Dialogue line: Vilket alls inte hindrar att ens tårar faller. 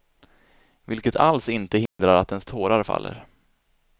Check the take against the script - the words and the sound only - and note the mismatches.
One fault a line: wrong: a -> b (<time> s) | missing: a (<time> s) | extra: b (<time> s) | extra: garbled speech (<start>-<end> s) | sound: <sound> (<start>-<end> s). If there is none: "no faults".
sound: dropout (1.9-2.0 s)